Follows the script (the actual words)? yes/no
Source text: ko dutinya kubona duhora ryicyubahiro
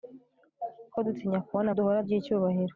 yes